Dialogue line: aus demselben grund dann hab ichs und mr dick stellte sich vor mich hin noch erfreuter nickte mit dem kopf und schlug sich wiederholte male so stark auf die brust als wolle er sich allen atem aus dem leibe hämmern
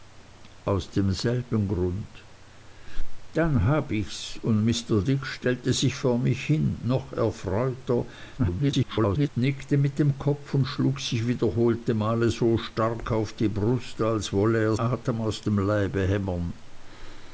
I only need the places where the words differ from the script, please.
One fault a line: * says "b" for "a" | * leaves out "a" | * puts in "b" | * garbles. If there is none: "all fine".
* garbles
* leaves out "sich allen"